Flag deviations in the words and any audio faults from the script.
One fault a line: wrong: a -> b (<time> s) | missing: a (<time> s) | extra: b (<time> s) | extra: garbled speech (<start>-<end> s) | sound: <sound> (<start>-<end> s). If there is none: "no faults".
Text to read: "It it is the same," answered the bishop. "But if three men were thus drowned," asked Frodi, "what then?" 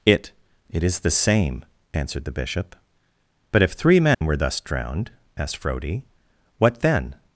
sound: dropout (4.1-4.2 s)